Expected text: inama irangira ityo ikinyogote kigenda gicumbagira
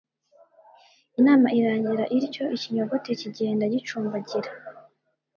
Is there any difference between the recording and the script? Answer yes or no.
no